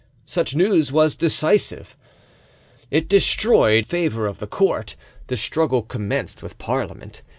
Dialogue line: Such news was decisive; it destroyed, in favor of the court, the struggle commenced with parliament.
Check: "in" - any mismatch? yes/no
yes